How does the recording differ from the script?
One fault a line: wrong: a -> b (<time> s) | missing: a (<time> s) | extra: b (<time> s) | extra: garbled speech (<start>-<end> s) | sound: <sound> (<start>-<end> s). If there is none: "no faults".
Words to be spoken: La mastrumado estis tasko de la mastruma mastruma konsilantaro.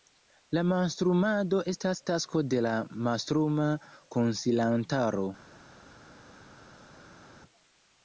wrong: estis -> estas (1.7 s)
missing: mastruma (3.7 s)